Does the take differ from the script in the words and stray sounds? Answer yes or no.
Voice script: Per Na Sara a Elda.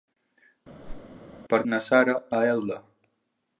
yes